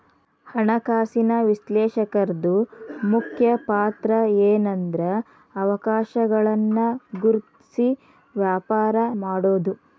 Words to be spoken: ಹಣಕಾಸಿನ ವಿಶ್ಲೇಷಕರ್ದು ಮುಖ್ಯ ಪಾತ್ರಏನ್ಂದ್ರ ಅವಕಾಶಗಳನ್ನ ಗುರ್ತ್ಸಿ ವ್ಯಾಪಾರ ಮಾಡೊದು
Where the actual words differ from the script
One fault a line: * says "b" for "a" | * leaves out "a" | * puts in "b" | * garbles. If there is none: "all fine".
all fine